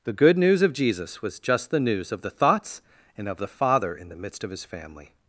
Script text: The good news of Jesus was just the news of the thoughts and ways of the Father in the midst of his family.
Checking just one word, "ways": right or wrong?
wrong